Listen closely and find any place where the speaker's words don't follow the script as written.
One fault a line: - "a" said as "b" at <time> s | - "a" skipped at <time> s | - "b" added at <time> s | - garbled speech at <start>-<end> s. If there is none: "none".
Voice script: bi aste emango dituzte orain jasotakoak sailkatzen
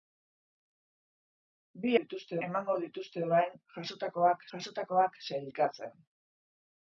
- "aste" said as "dituzte" at 2.0 s
- "jasotakoak" added at 4.6 s